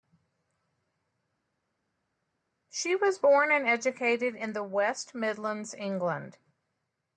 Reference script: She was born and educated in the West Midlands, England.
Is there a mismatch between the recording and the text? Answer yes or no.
no